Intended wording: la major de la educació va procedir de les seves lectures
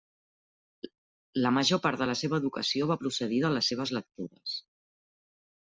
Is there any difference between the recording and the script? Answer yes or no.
yes